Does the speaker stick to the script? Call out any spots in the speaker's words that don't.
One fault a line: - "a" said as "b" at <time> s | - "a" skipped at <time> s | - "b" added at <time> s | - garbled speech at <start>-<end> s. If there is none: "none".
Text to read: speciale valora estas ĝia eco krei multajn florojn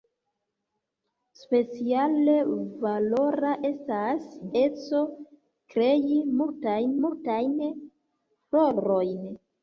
- "ĝia" skipped at 4.3 s
- "multajn" added at 7.1 s